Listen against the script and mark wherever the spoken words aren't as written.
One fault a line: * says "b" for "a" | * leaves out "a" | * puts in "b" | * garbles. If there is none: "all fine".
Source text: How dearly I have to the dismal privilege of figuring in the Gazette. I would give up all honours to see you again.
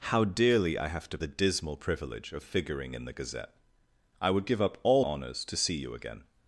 all fine